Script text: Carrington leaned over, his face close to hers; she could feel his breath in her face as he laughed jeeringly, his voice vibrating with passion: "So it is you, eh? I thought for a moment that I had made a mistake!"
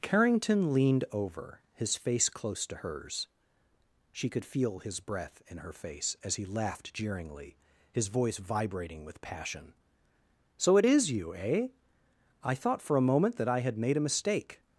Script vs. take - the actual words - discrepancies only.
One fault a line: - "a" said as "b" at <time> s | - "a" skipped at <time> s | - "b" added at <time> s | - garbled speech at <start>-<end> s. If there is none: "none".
none